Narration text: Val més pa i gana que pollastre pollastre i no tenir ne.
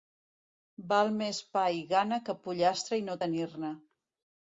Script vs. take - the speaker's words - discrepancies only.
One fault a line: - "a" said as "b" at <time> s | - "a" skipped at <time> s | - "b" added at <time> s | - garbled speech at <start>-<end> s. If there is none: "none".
- "pollastre" skipped at 3.0 s